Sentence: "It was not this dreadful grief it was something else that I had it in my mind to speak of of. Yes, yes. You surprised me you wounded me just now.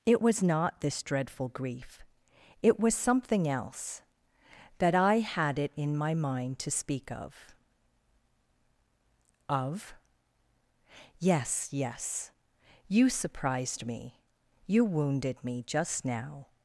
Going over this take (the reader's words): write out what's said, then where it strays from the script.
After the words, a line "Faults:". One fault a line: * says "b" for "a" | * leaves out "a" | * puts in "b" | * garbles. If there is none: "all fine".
"It was not this dreadful grief it was something else that I had it in my mind to speak of of. Yes, yes. You surprised me you wounded me just now.
Faults:
all fine